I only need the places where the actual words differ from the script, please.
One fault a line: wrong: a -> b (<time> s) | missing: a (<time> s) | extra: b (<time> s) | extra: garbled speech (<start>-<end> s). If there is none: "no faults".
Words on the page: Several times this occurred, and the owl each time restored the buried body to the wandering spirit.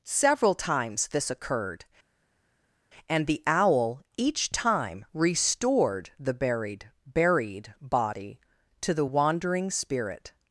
extra: buried (7.0 s)